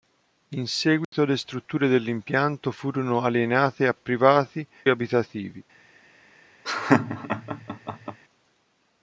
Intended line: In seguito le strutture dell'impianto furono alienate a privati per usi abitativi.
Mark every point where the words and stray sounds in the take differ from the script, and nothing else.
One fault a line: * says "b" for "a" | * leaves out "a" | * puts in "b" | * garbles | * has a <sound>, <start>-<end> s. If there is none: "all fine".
* has a dropout, 1.0-1.1 s
* leaves out "per usi"
* has a laugh, 6.6-8.2 s